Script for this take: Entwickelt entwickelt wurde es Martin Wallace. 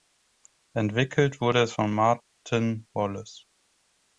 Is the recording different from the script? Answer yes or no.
yes